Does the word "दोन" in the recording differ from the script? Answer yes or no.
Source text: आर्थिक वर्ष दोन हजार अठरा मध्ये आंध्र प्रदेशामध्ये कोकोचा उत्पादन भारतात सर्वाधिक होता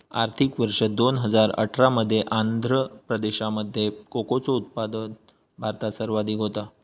no